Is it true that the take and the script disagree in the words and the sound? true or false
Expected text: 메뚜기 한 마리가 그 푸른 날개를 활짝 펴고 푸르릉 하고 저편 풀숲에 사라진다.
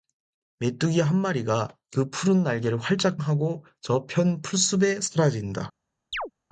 true